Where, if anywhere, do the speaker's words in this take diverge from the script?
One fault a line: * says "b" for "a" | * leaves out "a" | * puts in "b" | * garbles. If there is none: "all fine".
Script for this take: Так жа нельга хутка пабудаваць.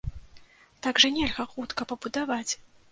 all fine